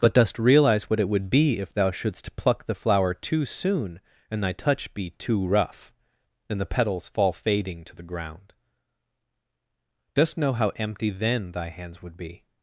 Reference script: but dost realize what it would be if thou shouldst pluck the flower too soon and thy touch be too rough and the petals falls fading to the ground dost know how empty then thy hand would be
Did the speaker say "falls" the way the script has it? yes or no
no